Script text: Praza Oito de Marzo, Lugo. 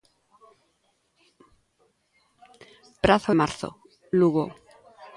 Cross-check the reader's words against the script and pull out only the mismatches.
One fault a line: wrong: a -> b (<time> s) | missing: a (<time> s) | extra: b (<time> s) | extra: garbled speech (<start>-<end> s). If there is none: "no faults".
missing: Oito de (3.3 s)